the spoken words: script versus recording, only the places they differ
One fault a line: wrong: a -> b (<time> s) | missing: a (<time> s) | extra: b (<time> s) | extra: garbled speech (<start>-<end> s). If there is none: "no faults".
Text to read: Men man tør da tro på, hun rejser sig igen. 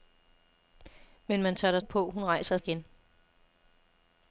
missing: tro (1.8 s)
missing: sig (2.6 s)